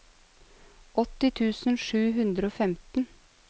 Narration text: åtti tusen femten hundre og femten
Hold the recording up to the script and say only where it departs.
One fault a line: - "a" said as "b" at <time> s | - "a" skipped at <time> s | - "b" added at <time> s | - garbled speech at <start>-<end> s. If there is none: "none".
- "femten" said as "sju" at 1.9 s